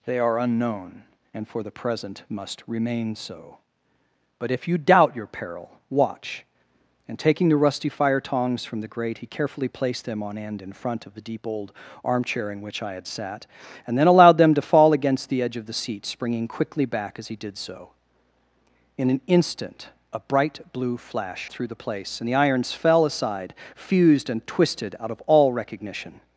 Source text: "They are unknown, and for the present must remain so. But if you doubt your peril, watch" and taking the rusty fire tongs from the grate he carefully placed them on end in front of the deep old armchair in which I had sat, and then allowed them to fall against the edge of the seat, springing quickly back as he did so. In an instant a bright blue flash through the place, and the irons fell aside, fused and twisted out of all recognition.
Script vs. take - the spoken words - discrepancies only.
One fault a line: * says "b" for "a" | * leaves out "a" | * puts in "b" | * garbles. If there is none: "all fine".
all fine